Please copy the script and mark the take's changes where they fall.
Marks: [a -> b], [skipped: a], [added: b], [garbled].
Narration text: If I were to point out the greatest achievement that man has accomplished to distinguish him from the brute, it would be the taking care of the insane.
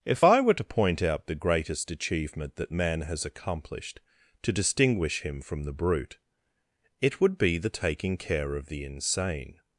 If I were to point out the greatest achievement that man has accomplished to distinguish him from the brute, it would be the taking care of the insane.